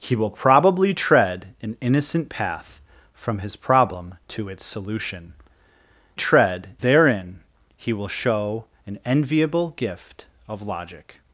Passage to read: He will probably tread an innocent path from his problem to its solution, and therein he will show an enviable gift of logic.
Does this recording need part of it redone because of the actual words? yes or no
yes